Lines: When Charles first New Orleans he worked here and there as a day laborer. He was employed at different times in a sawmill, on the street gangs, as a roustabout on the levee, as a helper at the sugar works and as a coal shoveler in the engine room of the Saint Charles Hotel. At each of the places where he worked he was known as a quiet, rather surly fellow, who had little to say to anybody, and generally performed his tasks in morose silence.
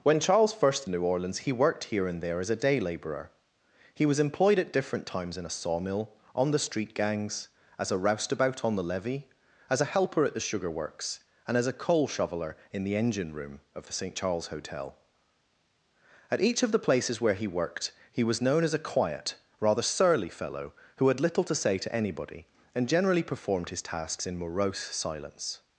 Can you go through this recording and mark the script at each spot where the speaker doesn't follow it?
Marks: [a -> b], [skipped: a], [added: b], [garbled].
When Charles first New Orleans he worked here and there as a day laborer. He was employed at different times in a sawmill, on the street gangs, as a roustabout on the levee, as a helper at the sugar works and as a coal shoveler in the engine room of the Saint Charles Hotel. At each of the places where he worked he was known as a quiet, rather surly fellow, who had little to say to anybody, and generally performed his tasks in morose silence.